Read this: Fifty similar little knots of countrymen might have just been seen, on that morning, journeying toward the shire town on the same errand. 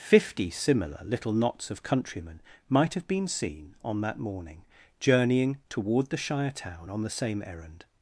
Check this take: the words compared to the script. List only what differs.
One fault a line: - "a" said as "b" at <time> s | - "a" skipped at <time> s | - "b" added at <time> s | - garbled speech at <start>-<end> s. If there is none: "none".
- "just" skipped at 3.1 s